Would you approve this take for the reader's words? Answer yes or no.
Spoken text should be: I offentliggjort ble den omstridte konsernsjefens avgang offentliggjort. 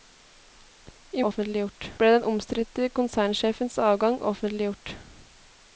yes